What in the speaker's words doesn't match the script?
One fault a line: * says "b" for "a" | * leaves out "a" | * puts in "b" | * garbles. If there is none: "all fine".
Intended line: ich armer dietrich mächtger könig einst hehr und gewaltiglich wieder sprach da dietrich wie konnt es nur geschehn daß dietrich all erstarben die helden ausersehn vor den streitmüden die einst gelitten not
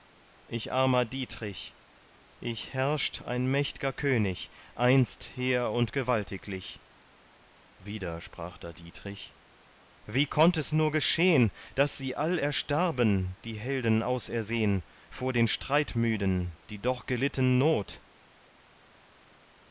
* puts in "ich herrscht ein"
* says "sie" for "dietrich"
* says "doch" for "einst"